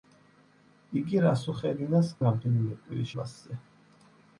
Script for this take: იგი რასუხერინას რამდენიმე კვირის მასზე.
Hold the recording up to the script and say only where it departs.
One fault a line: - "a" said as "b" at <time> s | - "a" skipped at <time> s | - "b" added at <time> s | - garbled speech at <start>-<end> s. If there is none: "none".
none